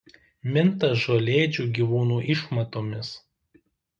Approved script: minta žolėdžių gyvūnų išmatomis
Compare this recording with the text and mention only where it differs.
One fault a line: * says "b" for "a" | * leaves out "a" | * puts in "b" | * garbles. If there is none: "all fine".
all fine